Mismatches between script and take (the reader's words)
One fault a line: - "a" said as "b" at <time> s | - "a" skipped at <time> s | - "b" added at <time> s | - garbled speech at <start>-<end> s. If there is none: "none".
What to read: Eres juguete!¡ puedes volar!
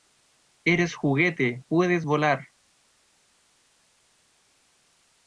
none